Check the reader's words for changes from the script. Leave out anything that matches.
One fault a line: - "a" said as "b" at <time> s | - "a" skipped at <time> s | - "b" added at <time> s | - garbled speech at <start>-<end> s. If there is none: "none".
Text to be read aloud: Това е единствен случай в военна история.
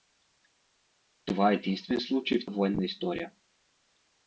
none